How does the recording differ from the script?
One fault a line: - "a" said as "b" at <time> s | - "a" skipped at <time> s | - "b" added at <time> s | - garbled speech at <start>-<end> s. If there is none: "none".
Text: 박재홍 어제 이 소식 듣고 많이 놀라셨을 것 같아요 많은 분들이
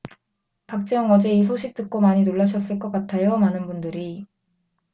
none